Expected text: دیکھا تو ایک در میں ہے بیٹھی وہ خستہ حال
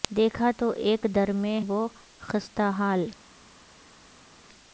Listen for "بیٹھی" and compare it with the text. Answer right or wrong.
wrong